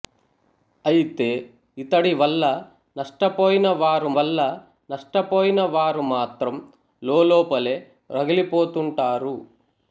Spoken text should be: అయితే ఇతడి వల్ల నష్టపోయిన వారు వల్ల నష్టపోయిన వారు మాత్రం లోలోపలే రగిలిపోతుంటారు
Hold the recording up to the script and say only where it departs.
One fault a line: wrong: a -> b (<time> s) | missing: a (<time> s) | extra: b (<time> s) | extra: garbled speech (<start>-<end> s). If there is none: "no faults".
no faults